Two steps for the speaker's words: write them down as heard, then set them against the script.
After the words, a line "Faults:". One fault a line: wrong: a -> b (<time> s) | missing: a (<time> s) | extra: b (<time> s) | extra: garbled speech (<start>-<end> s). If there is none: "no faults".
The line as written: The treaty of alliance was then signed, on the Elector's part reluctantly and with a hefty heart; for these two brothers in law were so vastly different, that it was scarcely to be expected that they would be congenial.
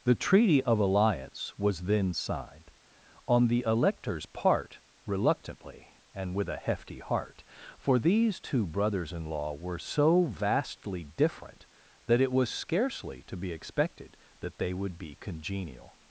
The treaty of alliance was then signed, on the Elector's part reluctantly and with a hefty heart; for these two brothers in law were so vastly different, that it was scarcely to be expected that they would be congenial.
Faults:
no faults